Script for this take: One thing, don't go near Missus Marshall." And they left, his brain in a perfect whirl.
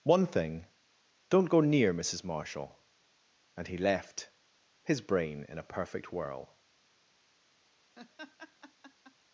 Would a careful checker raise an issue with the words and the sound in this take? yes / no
yes